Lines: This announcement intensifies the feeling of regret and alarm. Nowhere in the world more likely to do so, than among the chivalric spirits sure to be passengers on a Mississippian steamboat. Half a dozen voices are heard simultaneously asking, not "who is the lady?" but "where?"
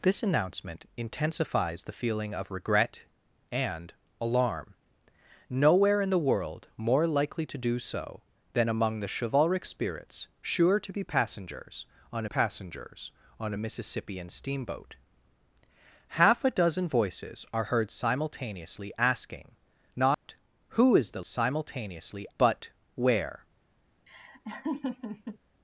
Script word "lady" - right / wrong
wrong